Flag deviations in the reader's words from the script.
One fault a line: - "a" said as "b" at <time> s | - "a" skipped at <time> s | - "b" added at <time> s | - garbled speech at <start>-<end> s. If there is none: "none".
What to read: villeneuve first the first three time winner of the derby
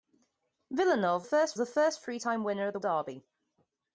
none